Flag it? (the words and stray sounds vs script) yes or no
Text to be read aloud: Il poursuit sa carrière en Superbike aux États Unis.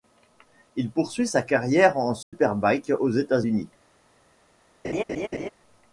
yes